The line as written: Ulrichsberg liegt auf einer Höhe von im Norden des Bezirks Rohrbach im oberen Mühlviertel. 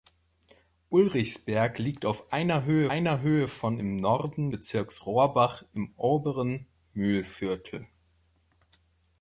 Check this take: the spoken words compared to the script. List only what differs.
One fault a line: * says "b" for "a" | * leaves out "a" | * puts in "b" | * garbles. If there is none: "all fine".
* puts in "einer Höhe"
* leaves out "des"